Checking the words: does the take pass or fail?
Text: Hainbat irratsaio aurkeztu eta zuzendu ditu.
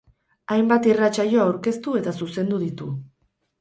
pass